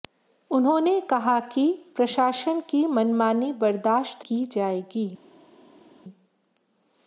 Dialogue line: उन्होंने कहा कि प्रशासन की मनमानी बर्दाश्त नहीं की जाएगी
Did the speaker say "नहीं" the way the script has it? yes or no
no